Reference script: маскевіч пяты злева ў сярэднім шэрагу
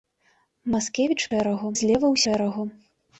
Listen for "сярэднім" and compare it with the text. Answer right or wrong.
wrong